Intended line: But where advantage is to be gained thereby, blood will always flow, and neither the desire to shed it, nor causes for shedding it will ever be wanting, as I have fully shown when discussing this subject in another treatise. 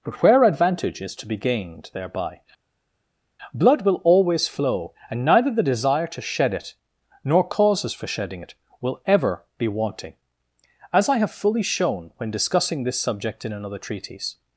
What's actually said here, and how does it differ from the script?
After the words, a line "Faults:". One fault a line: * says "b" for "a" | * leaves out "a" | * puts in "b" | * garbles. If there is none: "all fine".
But where advantage is to be gained thereby, blood will always flow, and neither the desire to shed it, nor causes for shedding it will ever be wanting, as I have fully shown when discussing this subject in another treatise.
Faults:
all fine